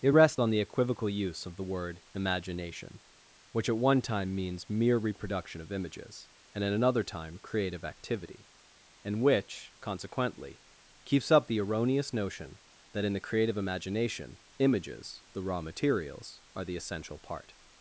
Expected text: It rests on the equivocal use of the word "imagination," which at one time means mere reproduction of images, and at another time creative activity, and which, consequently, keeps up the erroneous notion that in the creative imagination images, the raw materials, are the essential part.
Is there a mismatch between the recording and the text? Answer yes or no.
no